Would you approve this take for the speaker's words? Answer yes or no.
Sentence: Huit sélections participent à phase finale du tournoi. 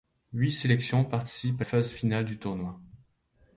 yes